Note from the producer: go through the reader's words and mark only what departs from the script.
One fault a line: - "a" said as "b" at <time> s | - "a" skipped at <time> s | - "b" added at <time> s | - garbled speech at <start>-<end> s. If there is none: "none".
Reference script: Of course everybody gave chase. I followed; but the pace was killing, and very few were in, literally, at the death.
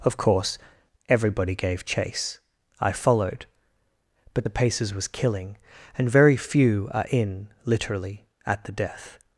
- "pace" said as "paces" at 4.5 s
- "were" said as "are" at 6.9 s